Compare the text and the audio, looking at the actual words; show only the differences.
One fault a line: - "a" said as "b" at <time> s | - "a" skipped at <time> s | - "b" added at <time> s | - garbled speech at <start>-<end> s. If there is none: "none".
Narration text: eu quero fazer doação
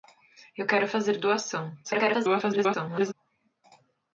- garbled speech at 1.8-3.1 s